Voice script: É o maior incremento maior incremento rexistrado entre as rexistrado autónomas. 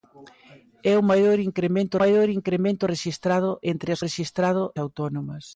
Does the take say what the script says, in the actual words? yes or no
yes